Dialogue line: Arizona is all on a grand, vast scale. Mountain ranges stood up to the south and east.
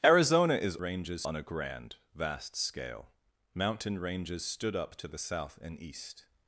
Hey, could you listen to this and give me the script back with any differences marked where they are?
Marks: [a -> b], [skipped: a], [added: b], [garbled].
Arizona is [all -> ranges] on a grand, vast scale. Mountain ranges stood up to the south and east.